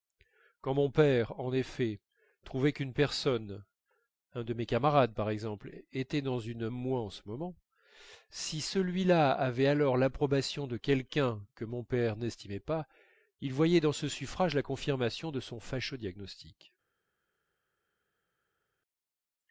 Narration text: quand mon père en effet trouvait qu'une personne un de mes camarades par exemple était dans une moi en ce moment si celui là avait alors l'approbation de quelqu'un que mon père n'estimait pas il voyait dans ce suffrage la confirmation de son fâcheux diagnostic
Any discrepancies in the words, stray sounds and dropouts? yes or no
no